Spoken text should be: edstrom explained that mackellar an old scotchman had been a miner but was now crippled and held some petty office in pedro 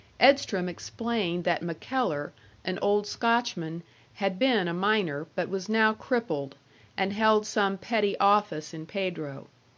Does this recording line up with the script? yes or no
yes